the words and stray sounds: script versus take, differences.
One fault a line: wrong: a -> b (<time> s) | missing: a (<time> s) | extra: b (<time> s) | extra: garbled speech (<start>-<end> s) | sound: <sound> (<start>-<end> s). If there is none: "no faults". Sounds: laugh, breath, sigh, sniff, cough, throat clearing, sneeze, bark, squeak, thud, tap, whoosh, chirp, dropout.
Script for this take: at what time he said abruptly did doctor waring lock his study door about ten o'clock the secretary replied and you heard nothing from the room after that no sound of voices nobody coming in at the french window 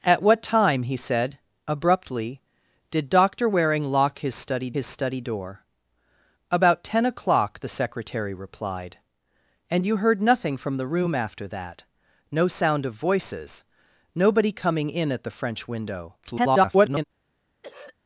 extra: his study (4.7 s)
extra: garbled speech (16.2-17.0 s)
sound: throat clearing (17.6-18.0 s)